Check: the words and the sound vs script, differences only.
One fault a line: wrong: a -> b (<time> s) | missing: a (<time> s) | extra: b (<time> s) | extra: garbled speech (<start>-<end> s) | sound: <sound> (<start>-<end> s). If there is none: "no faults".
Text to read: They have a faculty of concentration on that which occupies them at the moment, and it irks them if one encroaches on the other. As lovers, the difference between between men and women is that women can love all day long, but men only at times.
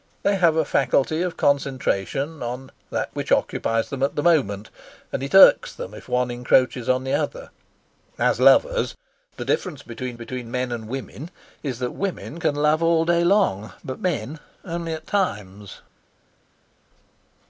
no faults